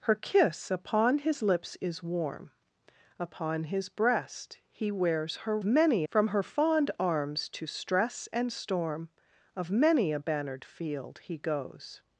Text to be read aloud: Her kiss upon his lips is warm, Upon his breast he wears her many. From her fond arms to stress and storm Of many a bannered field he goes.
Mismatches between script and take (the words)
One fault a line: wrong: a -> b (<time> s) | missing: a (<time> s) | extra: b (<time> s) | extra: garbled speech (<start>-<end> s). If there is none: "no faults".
no faults